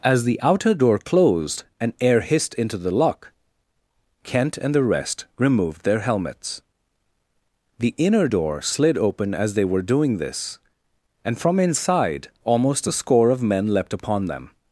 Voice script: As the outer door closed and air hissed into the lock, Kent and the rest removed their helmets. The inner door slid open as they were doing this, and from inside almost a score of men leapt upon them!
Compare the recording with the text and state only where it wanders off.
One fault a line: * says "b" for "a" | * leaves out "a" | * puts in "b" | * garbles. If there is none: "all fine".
all fine